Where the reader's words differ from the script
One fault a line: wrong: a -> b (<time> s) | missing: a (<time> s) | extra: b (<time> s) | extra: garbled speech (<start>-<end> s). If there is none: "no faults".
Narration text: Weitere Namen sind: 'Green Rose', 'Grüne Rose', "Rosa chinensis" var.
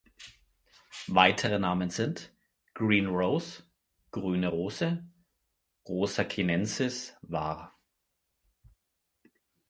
no faults